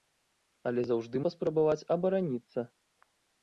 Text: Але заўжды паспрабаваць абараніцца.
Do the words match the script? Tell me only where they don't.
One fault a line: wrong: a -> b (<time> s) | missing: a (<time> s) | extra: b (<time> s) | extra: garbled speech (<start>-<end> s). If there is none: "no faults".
no faults